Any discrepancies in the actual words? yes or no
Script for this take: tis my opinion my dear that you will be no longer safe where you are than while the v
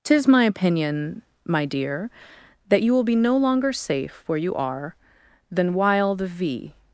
no